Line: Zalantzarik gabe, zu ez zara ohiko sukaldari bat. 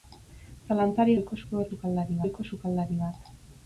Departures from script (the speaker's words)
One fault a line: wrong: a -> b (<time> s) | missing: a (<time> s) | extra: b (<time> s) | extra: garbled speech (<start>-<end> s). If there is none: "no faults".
wrong: gabe -> ohiko (1.2 s)
wrong: zara -> sukaldari (1.7 s)